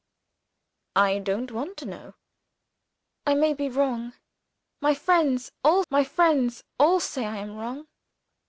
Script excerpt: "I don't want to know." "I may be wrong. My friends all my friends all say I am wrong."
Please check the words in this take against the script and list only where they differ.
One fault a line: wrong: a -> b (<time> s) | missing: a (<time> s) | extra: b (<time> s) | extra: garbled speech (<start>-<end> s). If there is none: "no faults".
no faults